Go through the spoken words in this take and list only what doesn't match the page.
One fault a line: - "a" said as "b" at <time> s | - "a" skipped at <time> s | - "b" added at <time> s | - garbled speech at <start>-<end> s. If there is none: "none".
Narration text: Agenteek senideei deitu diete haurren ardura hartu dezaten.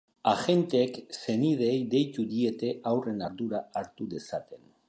none